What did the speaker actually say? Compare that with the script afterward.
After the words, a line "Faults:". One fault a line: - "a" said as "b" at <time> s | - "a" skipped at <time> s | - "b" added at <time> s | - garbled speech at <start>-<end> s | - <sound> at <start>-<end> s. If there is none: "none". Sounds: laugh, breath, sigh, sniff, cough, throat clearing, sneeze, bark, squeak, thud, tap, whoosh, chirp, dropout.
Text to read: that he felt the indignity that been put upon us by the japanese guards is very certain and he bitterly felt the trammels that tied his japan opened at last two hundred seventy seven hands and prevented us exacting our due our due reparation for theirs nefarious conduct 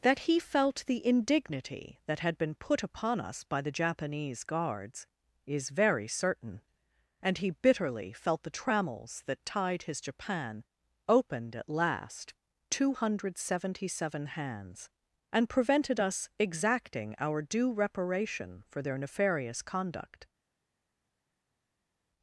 that he felt the indignity that had been put upon us by the japanese guards is very certain and he bitterly felt the trammels that tied his japan opened at last two hundred seventy seven hands and prevented us exacting our due reparation for their nefarious conduct
Faults:
- "had" added at 2.2 s
- "our due" skipped at 17.7 s
- "theirs" said as "their" at 18.8 s